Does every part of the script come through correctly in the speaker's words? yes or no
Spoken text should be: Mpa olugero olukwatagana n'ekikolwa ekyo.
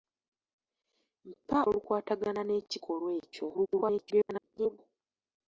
no